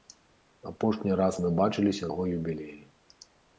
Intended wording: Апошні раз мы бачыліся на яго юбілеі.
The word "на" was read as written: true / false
false